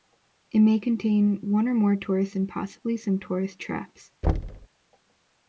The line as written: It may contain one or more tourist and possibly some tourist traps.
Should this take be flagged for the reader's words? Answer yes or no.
no